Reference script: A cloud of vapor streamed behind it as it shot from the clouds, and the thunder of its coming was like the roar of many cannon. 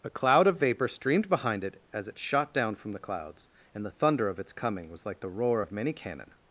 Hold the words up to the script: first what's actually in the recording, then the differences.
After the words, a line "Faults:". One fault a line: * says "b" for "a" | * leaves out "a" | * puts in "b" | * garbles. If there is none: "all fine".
A cloud of vapor streamed behind it as it shot down from the clouds, and the thunder of its coming was like the roar of many cannon.
Faults:
* puts in "down"